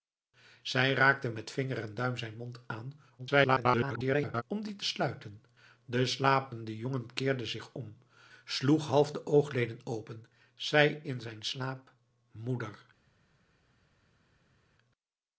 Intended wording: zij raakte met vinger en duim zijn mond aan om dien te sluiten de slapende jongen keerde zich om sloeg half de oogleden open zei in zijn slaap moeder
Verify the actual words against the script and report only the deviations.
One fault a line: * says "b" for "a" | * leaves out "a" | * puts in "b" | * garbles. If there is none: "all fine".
* garbles